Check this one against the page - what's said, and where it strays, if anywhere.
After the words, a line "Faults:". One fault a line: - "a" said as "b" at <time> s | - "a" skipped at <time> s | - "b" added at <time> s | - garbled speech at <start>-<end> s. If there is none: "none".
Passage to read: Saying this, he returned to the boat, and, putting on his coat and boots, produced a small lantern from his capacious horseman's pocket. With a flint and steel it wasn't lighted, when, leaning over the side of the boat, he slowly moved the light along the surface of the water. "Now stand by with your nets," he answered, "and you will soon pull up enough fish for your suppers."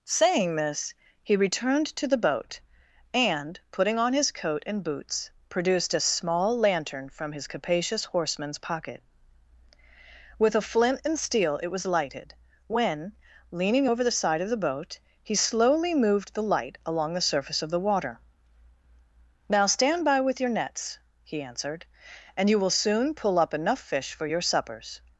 Saying this, he returned to the boat, and, putting on his coat and boots, produced a small lantern from his capacious horseman's pocket. With a flint and steel it was lighted, when, leaning over the side of the boat, he slowly moved the light along the surface of the water. "Now stand by with your nets," he answered, "and you will soon pull up enough fish for your suppers."
Faults:
- "wasn't" said as "was" at 11.7 s